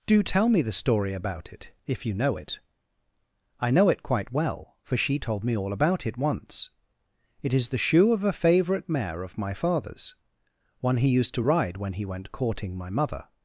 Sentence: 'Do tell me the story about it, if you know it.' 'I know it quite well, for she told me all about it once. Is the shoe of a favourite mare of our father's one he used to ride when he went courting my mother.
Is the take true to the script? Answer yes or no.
no